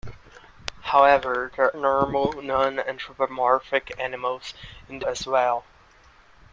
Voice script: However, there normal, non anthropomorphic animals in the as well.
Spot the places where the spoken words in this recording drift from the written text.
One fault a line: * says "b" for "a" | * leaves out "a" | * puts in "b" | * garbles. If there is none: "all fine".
all fine